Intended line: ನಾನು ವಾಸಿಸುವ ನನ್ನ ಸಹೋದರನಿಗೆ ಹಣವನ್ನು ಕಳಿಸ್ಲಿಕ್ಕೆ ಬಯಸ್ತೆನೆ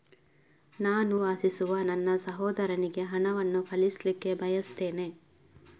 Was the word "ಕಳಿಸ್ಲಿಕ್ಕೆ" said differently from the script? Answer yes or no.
no